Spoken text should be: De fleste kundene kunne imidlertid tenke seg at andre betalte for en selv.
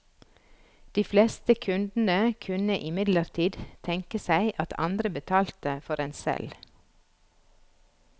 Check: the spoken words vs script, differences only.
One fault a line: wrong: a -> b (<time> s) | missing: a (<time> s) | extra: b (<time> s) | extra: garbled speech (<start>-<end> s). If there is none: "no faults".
no faults